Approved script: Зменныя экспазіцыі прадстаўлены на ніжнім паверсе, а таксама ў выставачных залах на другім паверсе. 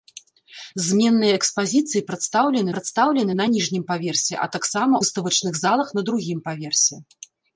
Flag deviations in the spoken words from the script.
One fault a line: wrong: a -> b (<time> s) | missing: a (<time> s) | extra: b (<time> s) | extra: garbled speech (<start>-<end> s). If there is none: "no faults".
extra: прадстаўлены (2.7 s)
missing: ў (4.9 s)